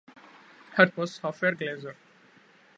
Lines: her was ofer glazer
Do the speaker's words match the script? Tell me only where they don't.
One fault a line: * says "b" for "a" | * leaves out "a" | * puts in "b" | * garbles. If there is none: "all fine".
all fine